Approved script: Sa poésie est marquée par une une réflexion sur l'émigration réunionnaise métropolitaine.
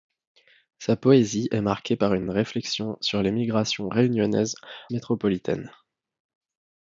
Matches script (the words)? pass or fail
pass